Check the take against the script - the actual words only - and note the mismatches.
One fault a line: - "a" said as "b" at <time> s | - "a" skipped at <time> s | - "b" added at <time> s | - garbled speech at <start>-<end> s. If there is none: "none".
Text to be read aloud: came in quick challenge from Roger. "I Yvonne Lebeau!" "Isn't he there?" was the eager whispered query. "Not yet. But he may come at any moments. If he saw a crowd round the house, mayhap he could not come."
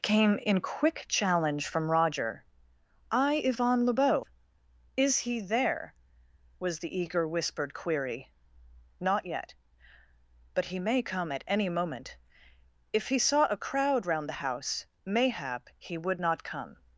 - "Isn't" said as "Is" at 5.0 s
- "moments" said as "moment" at 11.7 s
- "could" said as "would" at 16.0 s